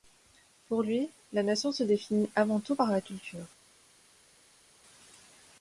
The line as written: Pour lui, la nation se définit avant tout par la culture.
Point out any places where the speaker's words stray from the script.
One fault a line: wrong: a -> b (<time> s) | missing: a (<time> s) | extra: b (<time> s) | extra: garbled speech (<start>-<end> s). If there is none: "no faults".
no faults